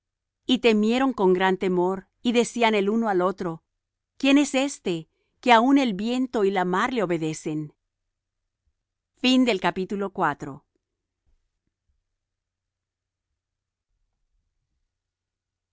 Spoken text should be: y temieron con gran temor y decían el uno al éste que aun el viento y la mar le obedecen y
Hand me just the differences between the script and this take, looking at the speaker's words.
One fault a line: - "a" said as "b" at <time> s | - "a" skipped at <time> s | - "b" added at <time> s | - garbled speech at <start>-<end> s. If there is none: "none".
- "otro quién es" added at 3.2 s